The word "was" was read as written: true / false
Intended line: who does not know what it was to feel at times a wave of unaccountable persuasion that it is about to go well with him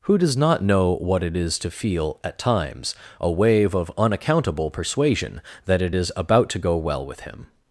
false